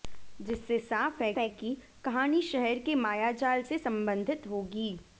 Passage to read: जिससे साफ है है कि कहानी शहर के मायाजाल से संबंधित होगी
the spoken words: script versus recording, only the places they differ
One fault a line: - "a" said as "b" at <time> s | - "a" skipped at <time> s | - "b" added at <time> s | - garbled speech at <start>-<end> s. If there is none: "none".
none